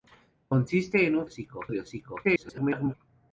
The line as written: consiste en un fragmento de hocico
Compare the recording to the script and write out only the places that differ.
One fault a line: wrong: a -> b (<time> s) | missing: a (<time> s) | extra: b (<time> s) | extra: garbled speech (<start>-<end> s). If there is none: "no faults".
wrong: fragmento -> hocico (1.2 s)
extra: garbled speech (2.2-2.9 s)